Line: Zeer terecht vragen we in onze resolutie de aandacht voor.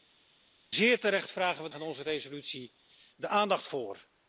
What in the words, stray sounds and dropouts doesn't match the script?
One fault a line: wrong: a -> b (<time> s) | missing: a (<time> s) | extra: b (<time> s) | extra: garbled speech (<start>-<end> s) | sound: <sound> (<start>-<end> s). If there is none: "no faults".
no faults